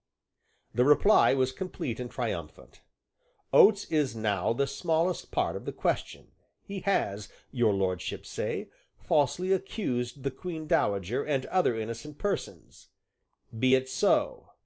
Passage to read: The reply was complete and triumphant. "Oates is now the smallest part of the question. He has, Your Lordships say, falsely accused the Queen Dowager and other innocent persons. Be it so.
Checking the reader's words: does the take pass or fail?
pass